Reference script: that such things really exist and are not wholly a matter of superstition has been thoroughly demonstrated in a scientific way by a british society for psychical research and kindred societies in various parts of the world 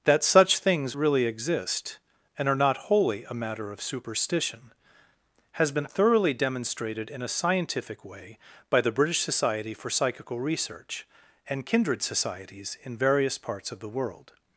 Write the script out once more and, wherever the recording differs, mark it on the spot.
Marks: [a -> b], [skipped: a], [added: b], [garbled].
that such things really exist and are not wholly a matter of superstition has been thoroughly demonstrated in a scientific way by [a -> the] british society for psychical research and kindred societies in various parts of the world